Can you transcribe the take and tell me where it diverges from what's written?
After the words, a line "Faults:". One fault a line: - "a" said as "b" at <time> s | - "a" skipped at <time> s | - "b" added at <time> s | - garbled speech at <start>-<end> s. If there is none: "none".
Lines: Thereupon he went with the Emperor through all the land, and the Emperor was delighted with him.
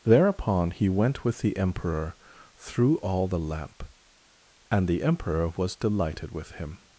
Thereupon he went with the Emperor through all the lamp, and the Emperor was delighted with him.
Faults:
- "land" said as "lamp" at 3.4 s